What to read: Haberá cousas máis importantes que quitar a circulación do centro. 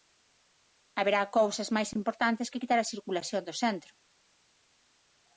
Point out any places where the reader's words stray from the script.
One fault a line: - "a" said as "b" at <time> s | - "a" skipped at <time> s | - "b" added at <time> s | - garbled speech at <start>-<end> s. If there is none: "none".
none